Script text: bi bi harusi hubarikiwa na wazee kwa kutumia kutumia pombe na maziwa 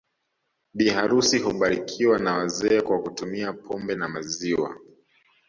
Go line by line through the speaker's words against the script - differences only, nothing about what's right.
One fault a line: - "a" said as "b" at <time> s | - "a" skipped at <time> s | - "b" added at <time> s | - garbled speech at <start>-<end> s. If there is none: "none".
- "bi" skipped at 0.9 s
- "kutumia" skipped at 3.5 s